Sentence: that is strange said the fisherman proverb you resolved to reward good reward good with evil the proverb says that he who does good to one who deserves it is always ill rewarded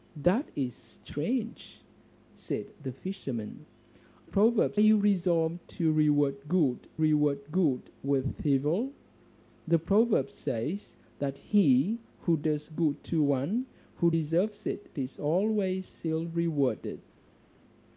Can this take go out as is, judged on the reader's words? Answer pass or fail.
pass